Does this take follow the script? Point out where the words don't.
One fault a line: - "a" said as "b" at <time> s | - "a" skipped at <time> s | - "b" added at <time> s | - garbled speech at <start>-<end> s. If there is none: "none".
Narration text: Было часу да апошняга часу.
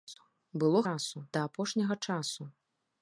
none